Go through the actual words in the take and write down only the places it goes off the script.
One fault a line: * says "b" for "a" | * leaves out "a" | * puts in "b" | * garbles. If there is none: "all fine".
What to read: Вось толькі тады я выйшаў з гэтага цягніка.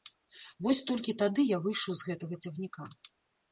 all fine